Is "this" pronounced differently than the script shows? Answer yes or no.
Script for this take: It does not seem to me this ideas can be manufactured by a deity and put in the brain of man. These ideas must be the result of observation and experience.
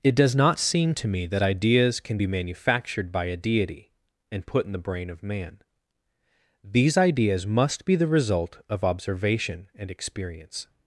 yes